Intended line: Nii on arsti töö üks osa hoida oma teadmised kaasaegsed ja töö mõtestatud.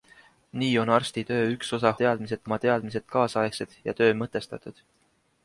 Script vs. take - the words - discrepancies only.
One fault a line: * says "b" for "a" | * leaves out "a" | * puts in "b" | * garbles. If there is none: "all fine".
* says "teadmised" for "hoida"